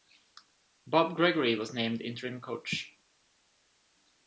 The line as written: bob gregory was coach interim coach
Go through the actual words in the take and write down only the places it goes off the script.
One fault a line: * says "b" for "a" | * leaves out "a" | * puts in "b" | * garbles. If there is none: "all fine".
* says "named" for "coach"